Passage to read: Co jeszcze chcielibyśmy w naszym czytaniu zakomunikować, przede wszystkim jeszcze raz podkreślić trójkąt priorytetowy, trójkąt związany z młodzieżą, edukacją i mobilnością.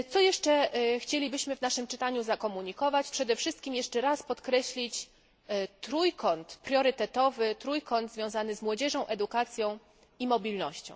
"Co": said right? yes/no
yes